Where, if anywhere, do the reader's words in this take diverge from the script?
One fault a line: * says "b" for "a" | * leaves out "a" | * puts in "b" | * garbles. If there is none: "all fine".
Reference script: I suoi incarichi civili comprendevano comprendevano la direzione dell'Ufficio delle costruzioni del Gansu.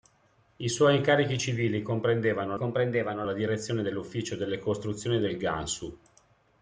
all fine